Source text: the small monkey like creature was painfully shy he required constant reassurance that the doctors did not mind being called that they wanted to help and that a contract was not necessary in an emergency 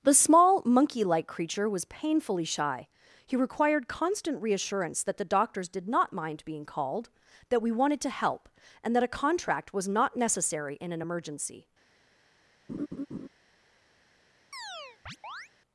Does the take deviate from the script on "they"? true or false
true